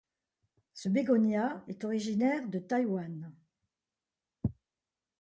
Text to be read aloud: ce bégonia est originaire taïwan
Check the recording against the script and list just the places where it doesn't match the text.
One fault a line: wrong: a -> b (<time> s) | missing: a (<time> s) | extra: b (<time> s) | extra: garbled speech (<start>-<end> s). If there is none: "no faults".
extra: de (2.5 s)